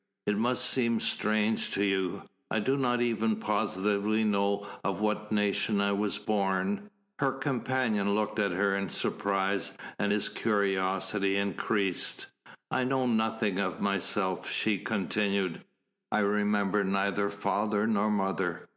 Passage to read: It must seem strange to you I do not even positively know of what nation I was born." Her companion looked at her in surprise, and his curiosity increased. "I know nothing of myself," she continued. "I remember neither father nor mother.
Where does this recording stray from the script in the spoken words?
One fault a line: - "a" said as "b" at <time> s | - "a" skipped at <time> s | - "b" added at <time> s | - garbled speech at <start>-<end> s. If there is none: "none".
none